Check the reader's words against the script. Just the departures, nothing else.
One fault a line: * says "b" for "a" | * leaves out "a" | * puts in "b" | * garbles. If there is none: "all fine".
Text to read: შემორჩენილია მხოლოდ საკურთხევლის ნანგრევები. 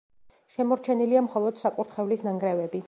all fine